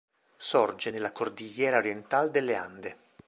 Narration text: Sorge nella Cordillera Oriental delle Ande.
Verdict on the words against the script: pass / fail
pass